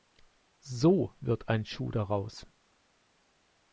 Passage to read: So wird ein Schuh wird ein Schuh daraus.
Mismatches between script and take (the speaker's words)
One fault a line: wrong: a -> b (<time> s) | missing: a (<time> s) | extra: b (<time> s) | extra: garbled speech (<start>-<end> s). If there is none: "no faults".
missing: wird ein Schuh (1.9 s)